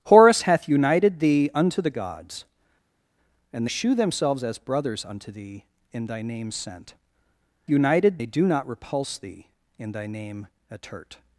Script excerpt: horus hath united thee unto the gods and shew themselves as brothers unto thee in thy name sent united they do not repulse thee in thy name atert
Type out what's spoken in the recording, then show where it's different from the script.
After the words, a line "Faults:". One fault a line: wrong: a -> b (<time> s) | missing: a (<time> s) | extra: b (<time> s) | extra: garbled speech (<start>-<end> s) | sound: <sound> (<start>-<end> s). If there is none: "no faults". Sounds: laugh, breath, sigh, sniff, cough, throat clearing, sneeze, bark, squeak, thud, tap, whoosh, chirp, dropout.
horus hath united thee unto the gods and shew themselves as brothers unto thee in thy name sent united they do not repulse thee in thy name atert
Faults:
no faults